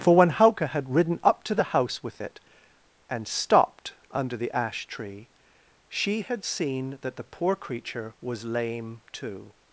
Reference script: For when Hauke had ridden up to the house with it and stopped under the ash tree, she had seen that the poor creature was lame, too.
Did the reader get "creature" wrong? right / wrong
right